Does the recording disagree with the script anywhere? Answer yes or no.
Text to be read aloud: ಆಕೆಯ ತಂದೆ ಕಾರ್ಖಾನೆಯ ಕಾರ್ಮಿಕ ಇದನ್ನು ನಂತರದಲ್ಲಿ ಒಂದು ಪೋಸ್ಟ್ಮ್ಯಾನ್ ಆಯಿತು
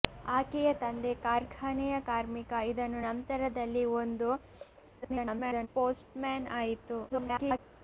yes